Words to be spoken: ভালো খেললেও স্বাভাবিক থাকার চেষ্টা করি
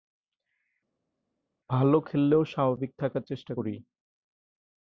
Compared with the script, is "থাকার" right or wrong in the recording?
right